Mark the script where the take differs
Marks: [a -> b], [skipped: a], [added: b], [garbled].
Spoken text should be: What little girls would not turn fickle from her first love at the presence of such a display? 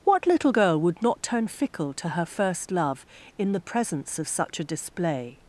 What little [girls -> girl] would not turn fickle [from -> to] her first love [at -> in] the presence of such a display?